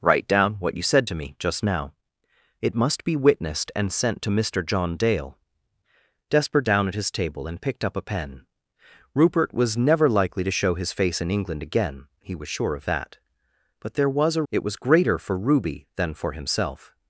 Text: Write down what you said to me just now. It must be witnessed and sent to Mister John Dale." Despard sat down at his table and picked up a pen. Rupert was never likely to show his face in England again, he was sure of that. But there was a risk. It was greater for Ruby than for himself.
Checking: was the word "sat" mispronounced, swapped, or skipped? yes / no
yes